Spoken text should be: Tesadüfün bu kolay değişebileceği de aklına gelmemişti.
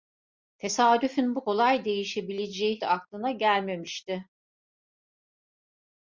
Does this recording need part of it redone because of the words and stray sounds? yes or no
no